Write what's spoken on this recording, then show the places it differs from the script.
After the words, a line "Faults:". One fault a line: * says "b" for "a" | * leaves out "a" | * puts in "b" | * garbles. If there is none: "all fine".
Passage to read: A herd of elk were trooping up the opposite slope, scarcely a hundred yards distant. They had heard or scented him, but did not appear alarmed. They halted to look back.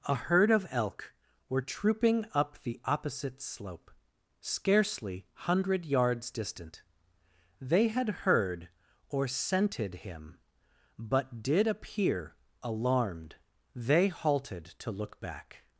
A herd of elk were trooping up the opposite slope, scarcely hundred yards distant. They had heard or scented him, but did appear alarmed. They halted to look back.
Faults:
* leaves out "a"
* leaves out "not"